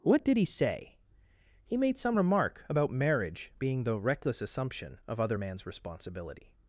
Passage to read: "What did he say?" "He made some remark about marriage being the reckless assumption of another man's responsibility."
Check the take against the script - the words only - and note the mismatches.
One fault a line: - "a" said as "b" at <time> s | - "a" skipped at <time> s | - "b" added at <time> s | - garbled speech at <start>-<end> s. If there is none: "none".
- "another" said as "other" at 5.2 s